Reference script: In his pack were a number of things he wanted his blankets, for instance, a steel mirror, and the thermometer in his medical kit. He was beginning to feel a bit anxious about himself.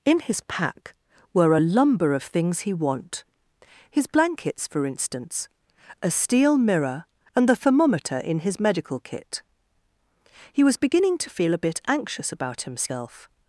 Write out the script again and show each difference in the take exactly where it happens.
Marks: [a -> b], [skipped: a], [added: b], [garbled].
In his pack were a [number -> lumber] of things he [wanted -> want] his blankets, for instance, a steel mirror, and the thermometer in his medical kit. He was beginning to feel a bit anxious about himself.